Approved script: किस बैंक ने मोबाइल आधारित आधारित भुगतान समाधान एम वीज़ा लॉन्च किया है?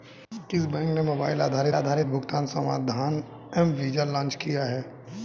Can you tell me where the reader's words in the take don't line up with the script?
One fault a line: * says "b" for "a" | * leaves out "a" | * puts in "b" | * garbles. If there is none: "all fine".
all fine